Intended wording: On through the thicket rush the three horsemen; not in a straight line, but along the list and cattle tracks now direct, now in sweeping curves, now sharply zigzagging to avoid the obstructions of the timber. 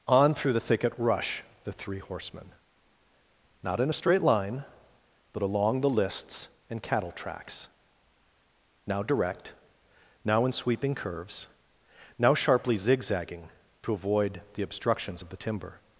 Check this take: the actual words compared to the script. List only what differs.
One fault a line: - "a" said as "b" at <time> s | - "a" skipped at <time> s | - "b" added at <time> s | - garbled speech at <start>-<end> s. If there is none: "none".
- "list" said as "lists" at 5.9 s